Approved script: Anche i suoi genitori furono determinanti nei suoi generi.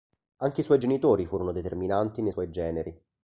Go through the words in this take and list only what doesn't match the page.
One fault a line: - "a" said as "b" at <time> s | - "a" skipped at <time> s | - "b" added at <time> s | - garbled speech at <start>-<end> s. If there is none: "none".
none